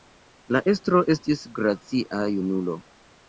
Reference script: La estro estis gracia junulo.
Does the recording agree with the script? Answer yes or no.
yes